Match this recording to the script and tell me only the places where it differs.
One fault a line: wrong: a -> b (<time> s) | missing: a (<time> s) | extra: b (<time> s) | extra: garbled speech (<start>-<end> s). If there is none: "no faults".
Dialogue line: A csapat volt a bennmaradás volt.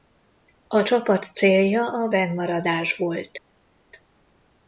wrong: volt -> célja (1.2 s)